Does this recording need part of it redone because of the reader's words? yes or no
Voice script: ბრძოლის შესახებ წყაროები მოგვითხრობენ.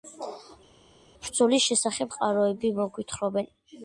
no